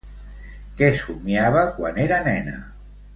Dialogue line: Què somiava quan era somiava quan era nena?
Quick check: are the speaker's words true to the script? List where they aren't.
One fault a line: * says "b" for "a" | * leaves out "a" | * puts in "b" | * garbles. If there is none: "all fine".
* leaves out "somiava quan era"